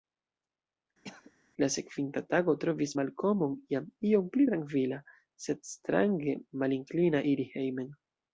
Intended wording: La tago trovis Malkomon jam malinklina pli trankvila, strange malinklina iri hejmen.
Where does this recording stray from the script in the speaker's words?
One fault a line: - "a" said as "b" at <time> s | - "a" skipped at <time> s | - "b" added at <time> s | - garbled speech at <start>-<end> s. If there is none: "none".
- "sekvinta" added at 1.7 s
- "malinklina" said as "iom" at 4.1 s
- "sed" added at 5.5 s